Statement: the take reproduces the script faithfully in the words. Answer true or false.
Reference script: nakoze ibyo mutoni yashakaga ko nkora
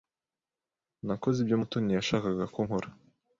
true